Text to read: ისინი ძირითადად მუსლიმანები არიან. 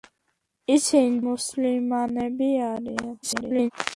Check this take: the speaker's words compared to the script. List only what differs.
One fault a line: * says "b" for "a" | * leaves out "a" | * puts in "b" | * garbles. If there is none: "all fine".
* leaves out "ძირითადად"
* garbles